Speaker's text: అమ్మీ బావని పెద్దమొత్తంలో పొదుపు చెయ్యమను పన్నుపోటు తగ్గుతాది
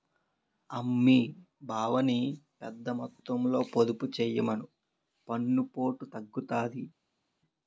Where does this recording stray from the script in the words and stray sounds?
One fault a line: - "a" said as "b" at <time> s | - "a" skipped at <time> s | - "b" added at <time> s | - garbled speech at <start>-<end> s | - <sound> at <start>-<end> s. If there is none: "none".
none